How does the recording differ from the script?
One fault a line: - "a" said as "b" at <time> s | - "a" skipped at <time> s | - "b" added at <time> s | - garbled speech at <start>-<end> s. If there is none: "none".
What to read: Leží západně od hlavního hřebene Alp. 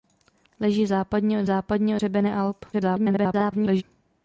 - "hlavního" said as "západně" at 1.4 s
- garbled speech at 2.7-3.8 s